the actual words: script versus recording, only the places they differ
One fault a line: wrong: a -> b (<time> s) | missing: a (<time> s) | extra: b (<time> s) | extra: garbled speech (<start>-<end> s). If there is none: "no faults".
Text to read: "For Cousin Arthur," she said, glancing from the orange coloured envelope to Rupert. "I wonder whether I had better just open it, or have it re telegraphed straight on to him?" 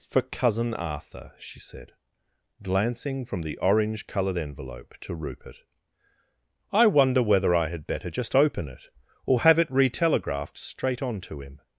no faults